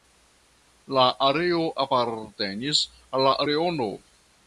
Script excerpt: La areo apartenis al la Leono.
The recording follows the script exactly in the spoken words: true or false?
true